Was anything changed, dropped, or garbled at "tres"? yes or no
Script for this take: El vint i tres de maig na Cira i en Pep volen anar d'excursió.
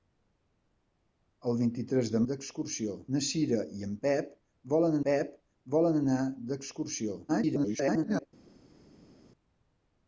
no